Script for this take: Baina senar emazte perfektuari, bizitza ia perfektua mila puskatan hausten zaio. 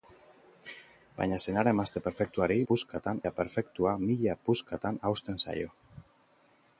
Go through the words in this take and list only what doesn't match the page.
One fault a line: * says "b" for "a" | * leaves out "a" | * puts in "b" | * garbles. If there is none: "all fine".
* says "puskatan" for "bizitza"